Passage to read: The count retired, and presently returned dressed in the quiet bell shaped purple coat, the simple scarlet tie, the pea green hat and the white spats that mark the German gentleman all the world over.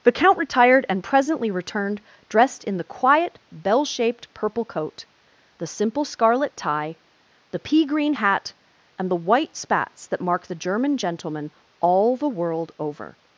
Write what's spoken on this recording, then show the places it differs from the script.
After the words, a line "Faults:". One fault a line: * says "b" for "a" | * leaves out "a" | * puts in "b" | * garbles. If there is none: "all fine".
The count retired, and presently returned dressed in the quiet bell shaped purple coat, the simple scarlet tie, the pea green hat and the white spats that mark the German gentleman all the world over.
Faults:
all fine